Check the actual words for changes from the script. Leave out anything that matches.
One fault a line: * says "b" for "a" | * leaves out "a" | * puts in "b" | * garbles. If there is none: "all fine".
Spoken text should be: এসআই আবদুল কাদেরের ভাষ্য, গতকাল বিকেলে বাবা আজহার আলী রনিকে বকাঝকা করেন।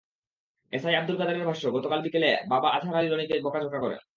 all fine